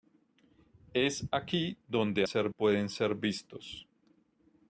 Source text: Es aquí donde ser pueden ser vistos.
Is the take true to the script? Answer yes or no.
yes